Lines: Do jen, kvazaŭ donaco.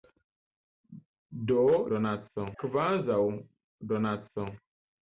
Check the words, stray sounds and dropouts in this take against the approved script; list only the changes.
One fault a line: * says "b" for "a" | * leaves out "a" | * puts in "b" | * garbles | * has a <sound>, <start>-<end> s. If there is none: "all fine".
* says "donaco" for "jen"